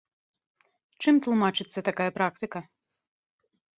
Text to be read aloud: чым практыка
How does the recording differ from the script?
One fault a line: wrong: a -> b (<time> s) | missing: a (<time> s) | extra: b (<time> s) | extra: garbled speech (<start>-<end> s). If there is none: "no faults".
extra: тлумачыцца такая (1.3 s)